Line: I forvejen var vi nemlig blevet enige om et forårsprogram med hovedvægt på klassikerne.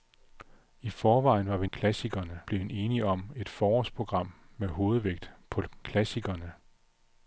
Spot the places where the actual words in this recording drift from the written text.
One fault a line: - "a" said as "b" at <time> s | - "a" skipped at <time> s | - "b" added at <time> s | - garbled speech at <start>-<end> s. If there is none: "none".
- "nemlig" said as "klassikerne" at 1.7 s